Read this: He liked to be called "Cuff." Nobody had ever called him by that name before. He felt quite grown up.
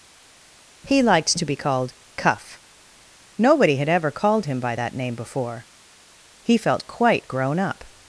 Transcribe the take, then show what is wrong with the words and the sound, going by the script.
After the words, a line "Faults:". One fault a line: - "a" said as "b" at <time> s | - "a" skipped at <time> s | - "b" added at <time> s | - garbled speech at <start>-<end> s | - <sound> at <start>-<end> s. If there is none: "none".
He liked to be called "Cuff." Nobody had ever called him by that name before. He felt quite grown up.
Faults:
none